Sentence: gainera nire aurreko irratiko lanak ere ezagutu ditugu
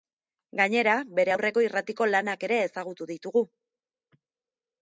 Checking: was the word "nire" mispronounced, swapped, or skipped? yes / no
yes